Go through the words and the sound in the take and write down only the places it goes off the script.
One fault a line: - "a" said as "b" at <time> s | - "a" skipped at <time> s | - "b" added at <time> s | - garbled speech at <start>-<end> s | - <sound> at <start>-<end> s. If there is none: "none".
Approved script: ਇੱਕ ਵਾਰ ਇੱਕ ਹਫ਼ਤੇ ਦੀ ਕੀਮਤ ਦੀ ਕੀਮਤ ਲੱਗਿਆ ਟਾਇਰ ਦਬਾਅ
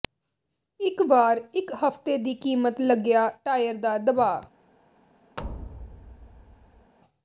- "ਦੀ ਕੀਮਤ" skipped at 2.8 s
- "ਦਾ" added at 3.8 s
- thud at 5.4-6.9 s